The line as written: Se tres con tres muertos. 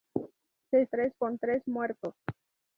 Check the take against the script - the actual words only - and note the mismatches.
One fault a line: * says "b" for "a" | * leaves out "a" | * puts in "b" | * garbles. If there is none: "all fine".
all fine